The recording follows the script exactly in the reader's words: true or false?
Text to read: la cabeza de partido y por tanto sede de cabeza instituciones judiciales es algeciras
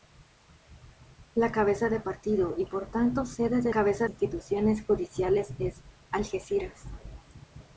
true